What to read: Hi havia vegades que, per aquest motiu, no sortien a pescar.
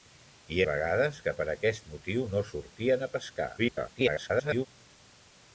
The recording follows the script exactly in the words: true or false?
false